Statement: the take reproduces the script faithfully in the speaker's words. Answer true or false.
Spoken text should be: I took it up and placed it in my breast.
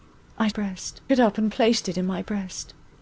false